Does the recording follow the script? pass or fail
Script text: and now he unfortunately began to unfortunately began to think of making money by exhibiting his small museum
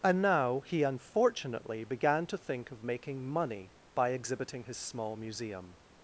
fail